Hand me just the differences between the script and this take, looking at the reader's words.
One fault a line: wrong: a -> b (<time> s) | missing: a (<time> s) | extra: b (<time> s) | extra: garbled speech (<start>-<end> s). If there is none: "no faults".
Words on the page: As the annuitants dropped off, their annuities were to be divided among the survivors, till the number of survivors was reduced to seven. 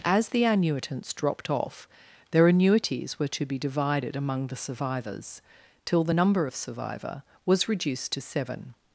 wrong: survivors -> survivor (6.5 s)